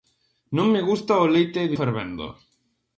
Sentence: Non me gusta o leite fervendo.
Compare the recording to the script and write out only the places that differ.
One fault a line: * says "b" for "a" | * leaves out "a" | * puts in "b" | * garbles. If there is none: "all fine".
all fine